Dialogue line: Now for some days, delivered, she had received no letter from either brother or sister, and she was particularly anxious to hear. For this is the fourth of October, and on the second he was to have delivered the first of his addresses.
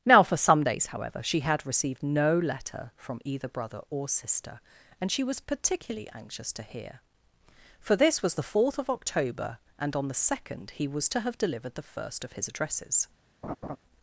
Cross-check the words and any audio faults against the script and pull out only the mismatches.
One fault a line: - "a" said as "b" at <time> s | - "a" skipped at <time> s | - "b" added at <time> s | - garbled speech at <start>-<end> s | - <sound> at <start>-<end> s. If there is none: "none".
- "delivered" said as "however" at 0.9 s
- "is" said as "was" at 8.2 s
- laugh at 13.4-13.8 s